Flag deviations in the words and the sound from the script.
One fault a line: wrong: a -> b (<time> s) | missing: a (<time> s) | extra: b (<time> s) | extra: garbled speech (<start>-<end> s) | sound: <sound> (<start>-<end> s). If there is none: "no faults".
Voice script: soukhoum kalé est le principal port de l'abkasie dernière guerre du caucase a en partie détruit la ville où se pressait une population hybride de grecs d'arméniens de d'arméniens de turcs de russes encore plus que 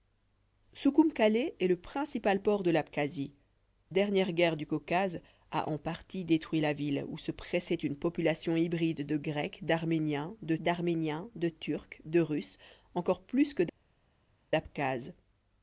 no faults